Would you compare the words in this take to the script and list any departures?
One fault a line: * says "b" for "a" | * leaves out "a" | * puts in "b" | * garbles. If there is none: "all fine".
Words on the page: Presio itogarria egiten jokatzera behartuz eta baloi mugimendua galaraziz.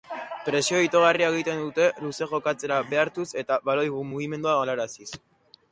* puts in "dute luze"